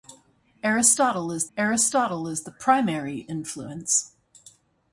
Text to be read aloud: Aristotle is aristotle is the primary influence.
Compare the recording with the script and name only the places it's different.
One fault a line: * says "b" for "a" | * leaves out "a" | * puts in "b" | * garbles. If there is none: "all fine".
all fine